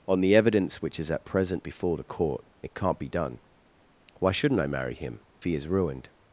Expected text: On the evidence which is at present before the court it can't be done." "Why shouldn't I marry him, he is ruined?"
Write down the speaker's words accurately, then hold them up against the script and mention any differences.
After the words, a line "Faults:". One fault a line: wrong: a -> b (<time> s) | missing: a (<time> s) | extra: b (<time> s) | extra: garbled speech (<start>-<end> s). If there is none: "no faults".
On the evidence which is at present before the court it can't be done." "Why shouldn't I marry him, he is ruined?"
Faults:
no faults